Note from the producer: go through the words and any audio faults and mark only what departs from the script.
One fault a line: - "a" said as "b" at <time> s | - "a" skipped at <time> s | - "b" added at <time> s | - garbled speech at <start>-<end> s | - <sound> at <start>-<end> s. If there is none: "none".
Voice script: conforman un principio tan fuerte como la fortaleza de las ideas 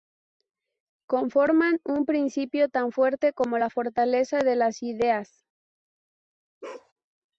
- bark at 6.6-6.9 s